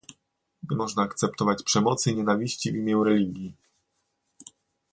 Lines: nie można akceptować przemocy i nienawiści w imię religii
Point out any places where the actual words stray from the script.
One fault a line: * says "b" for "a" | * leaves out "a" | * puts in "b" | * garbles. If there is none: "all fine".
all fine